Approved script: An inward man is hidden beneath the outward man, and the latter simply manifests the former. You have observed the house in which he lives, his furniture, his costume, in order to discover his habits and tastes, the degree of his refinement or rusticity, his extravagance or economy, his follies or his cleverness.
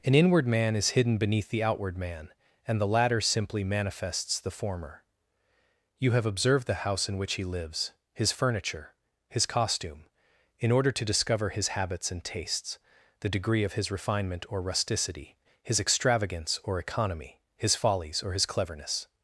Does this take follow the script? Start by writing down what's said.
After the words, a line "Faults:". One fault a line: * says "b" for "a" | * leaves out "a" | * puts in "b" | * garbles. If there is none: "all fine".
An inward man is hidden beneath the outward man, and the latter simply manifests the former. You have observed the house in which he lives, his furniture, his costume, in order to discover his habits and tastes, the degree of his refinement or rusticity, his extravagance or economy, his follies or his cleverness.
Faults:
all fine